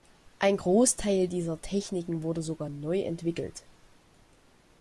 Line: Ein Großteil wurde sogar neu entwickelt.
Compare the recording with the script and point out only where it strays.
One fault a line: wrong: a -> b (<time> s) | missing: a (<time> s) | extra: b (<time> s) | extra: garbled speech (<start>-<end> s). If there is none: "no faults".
extra: dieser Techniken (1.3 s)